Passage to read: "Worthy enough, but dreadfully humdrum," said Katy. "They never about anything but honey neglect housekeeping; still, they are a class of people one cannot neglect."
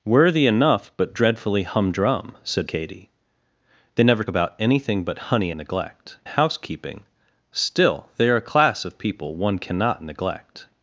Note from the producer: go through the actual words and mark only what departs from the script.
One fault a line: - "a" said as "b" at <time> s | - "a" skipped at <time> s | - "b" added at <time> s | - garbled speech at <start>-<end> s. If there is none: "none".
none